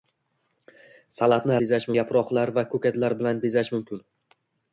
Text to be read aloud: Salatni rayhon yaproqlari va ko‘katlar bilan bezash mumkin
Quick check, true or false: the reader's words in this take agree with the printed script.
false